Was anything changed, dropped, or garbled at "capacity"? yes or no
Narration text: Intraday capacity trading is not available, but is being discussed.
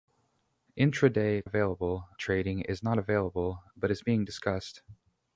yes